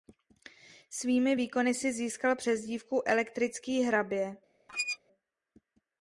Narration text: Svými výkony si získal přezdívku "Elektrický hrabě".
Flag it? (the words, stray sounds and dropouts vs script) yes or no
yes